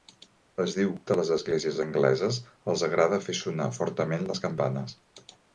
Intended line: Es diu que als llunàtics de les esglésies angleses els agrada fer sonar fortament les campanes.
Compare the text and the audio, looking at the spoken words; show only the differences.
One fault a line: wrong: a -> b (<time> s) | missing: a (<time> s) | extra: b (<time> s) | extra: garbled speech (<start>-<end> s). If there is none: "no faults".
missing: que als llunàtics (0.9 s)